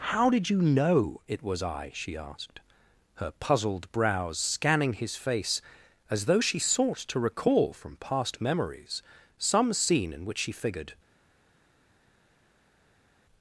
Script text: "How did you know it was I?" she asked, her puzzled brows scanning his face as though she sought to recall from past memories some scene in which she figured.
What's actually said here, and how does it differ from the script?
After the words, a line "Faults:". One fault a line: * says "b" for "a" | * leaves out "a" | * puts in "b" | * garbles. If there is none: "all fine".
"How did you know it was I?" she asked, her puzzled brows scanning his face as though she sought to recall from past memories some scene in which she figured.
Faults:
all fine